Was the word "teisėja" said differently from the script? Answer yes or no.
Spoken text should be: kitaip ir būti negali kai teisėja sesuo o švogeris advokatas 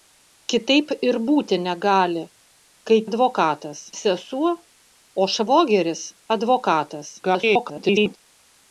yes